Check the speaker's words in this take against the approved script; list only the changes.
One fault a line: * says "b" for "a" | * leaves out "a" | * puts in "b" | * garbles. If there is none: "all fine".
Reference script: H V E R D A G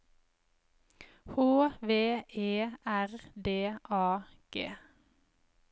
all fine